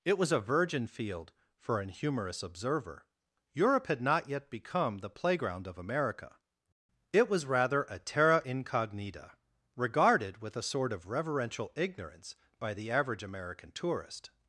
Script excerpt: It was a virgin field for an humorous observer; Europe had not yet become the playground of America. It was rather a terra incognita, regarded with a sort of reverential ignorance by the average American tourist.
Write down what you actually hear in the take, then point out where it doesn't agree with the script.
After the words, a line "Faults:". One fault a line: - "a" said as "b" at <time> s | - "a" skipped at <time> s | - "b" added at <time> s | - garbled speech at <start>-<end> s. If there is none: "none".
It was a virgin field for an humorous observer; Europe had not yet become the playground of America. It was rather a terra incognita, regarded with a sort of reverential ignorance by the average American tourist.
Faults:
none